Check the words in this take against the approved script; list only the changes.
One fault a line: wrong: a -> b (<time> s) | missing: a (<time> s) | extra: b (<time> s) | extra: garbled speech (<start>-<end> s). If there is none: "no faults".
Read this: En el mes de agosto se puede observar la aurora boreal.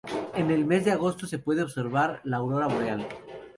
no faults